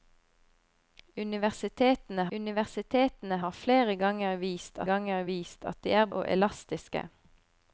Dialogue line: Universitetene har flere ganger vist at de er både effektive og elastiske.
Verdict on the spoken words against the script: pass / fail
fail